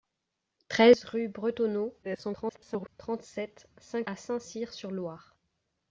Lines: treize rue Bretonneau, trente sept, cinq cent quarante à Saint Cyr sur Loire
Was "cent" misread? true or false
true